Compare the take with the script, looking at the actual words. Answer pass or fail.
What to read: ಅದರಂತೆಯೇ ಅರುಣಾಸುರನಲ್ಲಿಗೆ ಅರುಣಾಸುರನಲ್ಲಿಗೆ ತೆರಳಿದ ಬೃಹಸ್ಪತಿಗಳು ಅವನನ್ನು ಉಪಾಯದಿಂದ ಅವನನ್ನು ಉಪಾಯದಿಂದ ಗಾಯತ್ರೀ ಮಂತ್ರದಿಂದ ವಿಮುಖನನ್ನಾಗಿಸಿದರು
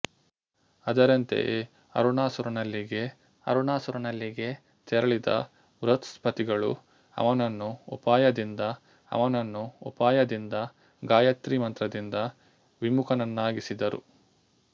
pass